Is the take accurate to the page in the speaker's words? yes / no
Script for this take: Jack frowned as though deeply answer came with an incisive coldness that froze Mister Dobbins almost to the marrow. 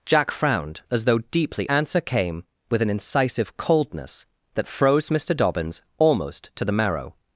yes